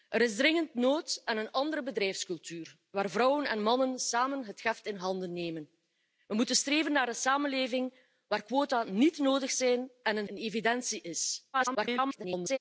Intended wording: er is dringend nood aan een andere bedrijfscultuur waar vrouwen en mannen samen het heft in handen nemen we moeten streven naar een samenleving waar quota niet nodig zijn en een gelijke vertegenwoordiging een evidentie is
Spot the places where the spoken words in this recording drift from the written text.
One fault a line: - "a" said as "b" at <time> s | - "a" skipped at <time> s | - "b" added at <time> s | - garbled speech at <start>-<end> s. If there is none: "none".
- "gelijke vertegenwoordiging" skipped at 10.3 s
- garbled speech at 11.5-12.6 s